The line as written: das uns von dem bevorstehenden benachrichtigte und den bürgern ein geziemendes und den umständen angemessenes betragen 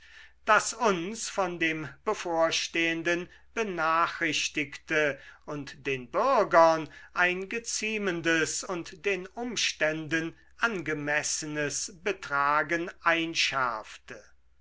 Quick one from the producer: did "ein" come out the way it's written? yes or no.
yes